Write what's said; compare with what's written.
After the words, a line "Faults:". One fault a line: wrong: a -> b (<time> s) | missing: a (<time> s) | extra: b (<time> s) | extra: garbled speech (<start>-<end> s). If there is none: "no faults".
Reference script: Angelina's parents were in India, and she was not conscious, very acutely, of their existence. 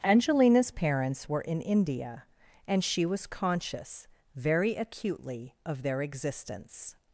Angelina's parents were in India, and she was conscious, very acutely, of their existence.
Faults:
missing: not (3.3 s)